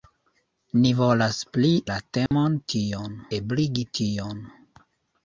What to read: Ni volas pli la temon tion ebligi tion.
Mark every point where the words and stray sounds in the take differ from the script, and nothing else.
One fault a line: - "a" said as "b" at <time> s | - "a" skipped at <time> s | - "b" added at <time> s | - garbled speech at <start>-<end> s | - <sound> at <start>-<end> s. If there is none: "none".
- dropout at 2.3-2.3 s